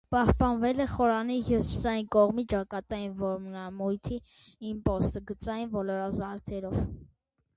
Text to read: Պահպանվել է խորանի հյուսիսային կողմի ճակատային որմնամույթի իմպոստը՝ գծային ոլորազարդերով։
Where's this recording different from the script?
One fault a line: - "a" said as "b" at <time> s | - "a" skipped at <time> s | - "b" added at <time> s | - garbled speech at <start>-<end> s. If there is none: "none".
none